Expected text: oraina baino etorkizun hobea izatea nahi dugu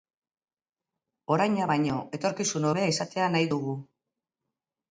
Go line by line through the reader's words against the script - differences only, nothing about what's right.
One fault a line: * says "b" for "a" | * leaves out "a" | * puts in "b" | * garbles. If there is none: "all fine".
all fine